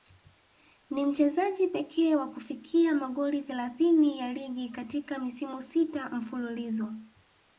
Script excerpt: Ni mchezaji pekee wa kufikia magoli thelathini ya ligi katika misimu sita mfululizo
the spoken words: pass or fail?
pass